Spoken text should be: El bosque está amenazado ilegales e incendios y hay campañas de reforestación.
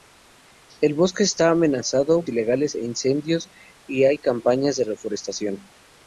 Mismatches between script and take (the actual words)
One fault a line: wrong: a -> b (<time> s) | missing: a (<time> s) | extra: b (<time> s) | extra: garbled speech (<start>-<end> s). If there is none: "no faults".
no faults